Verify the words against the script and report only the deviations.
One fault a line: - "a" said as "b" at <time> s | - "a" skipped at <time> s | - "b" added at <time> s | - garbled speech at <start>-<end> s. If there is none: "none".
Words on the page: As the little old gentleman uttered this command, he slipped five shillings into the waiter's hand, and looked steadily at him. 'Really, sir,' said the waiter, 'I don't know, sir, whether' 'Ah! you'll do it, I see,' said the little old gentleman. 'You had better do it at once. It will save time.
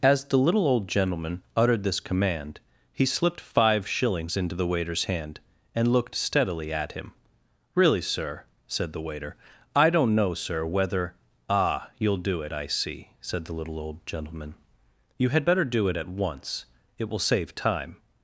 none